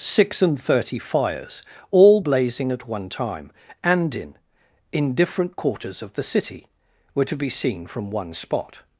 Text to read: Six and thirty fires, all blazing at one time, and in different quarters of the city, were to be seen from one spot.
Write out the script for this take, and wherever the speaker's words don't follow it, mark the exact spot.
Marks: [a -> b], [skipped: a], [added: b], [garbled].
Six and thirty fires, all blazing at one time, and in [added: in] different quarters of the city, were to be seen from one spot.